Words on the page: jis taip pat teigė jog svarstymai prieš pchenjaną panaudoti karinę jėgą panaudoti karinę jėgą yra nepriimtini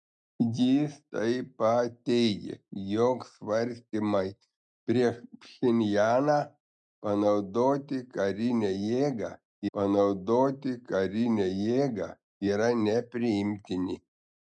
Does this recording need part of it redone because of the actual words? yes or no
no